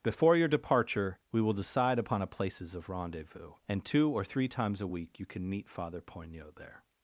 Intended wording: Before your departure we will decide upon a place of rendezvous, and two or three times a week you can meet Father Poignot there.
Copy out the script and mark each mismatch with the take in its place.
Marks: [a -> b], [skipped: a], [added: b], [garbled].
Before your departure we will decide upon a [place -> places] of rendezvous, and two or three times a week you can meet Father Poignot there.